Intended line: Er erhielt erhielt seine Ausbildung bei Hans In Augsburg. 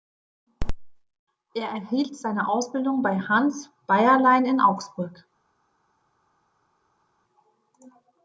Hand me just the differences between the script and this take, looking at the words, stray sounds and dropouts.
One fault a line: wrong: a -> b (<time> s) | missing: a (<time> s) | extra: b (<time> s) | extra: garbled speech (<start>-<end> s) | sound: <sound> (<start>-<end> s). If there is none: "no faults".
missing: erhielt (2.1 s)
extra: Beierlein (3.9 s)